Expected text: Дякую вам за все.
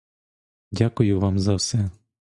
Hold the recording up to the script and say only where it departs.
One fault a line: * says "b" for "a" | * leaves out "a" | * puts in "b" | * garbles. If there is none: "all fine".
all fine